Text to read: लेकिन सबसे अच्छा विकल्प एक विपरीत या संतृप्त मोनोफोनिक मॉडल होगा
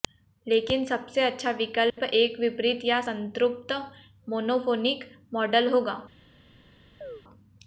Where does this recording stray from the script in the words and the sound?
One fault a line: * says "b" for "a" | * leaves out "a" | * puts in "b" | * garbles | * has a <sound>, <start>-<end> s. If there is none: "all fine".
* has a dropout, 1.9-2.0 s
* has a chirp, 7.0-7.2 s